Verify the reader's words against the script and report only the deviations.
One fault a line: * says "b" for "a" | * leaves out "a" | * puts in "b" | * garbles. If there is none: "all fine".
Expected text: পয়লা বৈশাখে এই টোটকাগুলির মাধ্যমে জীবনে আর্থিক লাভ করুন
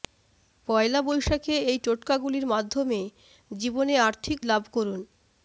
all fine